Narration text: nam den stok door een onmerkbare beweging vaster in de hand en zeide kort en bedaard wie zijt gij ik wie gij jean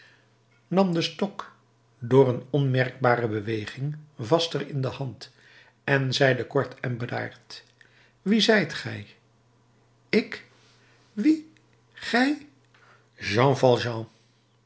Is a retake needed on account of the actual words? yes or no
no